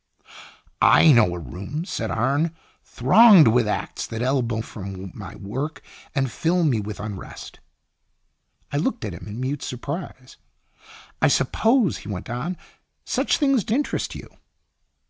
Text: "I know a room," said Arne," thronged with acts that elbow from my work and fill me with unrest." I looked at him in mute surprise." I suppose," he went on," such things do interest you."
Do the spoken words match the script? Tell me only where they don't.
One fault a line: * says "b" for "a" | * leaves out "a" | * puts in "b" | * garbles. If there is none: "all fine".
all fine